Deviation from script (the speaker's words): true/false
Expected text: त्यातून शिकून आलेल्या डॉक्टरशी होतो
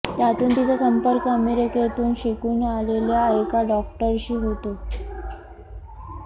true